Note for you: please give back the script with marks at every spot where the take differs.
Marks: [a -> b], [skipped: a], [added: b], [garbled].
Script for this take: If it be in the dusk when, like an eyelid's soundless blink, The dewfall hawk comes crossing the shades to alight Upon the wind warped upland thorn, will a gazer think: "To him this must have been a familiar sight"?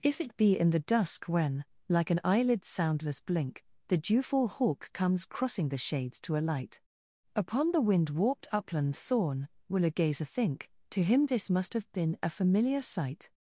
If it be in the dusk when, like an eyelid's soundless blink, The dewfall hawk comes crossing the shades to alight Upon the wind warped upland thorn, will a gazer think: "To him this must have been a familiar sight"?